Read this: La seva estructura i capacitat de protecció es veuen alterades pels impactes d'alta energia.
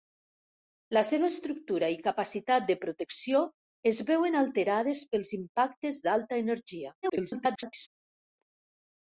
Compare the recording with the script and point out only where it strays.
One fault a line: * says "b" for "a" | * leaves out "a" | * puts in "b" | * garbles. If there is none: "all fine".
* garbles